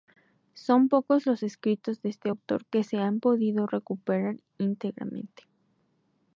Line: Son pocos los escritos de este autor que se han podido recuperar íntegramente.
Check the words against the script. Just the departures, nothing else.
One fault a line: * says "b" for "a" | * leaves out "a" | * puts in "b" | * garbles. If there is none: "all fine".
all fine